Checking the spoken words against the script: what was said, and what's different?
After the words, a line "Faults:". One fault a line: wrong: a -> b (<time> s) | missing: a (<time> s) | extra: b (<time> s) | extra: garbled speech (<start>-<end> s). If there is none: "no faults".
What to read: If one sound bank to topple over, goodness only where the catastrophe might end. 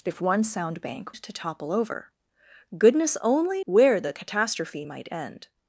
If one sound bank to topple over, goodness only where the catastrophe might end.
Faults:
no faults